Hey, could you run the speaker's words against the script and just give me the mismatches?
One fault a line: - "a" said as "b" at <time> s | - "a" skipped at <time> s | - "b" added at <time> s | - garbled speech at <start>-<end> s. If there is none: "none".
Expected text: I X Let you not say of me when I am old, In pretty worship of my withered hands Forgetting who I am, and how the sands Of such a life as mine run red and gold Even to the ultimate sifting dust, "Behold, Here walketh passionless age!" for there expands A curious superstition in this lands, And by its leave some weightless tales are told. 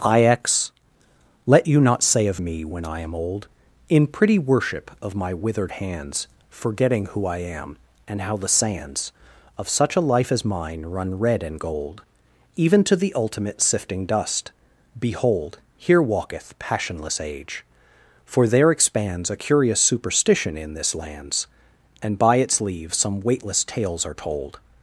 none